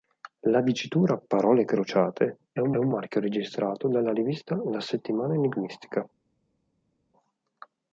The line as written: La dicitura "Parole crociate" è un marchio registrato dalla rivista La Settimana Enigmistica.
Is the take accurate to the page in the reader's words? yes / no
no